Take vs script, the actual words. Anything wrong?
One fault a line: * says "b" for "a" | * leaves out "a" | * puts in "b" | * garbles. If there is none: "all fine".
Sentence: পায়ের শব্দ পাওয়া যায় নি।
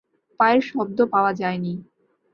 all fine